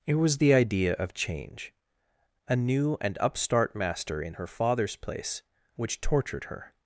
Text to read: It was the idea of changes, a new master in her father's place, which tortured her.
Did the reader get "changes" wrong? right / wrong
wrong